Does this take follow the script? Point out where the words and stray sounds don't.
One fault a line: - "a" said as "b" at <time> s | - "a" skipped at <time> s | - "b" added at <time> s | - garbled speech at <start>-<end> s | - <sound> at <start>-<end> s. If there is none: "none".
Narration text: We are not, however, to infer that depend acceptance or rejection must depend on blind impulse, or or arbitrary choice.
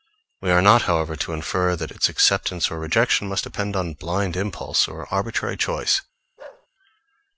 - "depend" said as "its" at 1.9 s
- "or" skipped at 5.1 s
- bark at 6.4-6.7 s